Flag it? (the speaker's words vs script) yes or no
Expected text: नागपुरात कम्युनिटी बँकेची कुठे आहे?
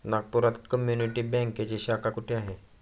yes